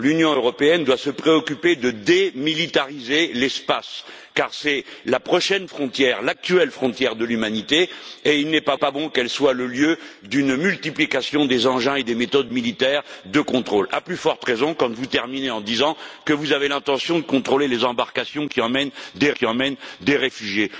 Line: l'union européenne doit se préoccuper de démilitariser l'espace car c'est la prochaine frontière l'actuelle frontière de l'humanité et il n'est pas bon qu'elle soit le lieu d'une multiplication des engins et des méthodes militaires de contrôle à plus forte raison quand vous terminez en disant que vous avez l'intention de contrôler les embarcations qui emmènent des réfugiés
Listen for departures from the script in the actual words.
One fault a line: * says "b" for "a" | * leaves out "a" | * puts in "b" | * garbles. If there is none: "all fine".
* puts in "pas"
* puts in "qui emmènent des"